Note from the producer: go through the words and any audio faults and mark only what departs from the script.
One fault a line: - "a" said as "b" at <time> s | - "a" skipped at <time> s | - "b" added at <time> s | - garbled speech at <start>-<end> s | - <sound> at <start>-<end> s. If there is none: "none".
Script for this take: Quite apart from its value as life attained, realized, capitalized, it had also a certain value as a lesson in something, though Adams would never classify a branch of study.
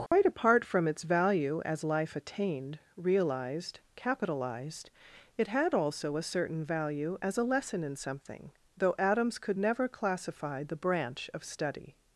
- dropout at 0.1-0.1 s
- "would" said as "could" at 9.4 s
- "a" said as "the" at 10.6 s